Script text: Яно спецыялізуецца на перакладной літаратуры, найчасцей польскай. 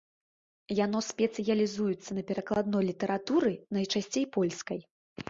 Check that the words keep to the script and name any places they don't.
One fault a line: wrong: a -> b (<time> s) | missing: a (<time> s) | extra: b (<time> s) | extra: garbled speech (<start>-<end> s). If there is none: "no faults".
no faults